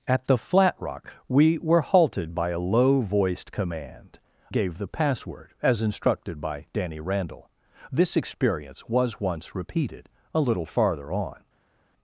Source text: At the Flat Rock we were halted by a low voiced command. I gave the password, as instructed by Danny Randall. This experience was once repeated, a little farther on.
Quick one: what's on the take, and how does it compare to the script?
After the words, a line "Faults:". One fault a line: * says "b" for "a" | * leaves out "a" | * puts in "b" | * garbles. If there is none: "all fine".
At the Flat Rock we were halted by a low voiced command. gave the password, as instructed by Danny Randall. This experience was once repeated, a little farther on.
Faults:
* leaves out "I"